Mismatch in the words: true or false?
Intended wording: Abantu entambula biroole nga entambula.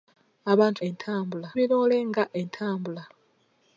false